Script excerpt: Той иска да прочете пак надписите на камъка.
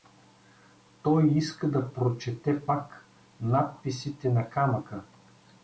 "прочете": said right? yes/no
yes